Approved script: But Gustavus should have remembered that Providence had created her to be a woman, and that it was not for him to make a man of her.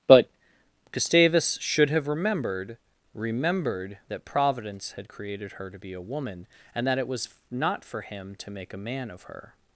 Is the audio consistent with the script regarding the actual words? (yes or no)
no